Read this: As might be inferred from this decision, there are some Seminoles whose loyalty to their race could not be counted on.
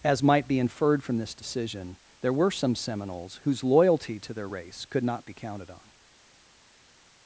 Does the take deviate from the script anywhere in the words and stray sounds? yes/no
yes